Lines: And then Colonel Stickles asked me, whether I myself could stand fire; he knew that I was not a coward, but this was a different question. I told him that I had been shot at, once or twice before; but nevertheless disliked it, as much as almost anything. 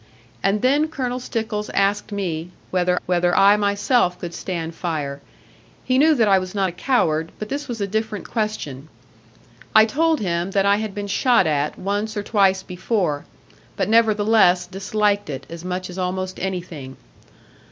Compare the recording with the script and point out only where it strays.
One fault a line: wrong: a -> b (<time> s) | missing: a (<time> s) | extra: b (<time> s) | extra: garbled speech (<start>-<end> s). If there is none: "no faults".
extra: whether (3.1 s)